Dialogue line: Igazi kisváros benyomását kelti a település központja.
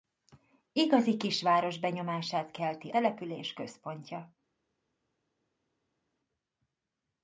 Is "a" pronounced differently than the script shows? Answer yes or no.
yes